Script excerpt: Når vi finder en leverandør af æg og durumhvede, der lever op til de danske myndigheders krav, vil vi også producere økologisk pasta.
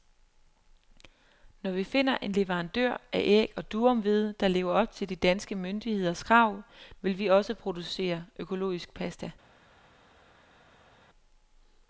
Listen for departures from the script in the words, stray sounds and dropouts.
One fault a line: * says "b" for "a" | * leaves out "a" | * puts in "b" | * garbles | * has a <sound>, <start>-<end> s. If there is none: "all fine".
all fine